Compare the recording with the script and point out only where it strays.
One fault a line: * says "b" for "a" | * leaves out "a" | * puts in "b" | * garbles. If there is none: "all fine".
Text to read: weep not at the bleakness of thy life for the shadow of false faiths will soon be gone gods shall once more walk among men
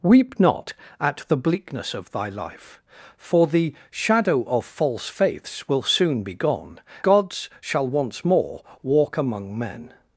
all fine